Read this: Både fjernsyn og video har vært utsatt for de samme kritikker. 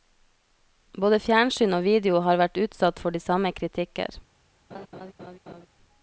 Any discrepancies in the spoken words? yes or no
no